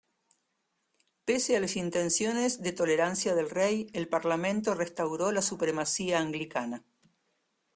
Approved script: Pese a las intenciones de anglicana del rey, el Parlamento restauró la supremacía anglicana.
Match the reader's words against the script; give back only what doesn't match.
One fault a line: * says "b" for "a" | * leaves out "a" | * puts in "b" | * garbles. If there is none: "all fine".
* says "tolerancia" for "anglicana"